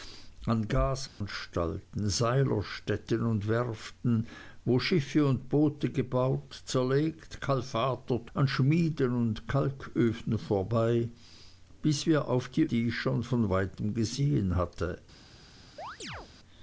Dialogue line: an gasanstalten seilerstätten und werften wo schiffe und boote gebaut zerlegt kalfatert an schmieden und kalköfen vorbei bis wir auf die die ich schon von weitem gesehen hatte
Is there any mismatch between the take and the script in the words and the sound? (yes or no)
yes